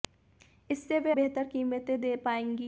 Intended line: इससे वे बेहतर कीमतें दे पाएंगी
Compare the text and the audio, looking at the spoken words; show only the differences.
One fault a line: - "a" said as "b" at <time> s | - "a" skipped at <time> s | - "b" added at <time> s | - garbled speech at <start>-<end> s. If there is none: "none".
none